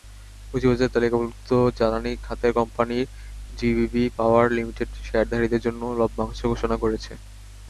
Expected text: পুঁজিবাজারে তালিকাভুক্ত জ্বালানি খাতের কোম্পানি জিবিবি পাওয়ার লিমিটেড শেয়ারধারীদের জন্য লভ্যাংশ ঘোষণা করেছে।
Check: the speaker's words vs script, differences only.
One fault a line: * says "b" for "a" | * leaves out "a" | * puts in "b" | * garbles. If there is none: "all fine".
all fine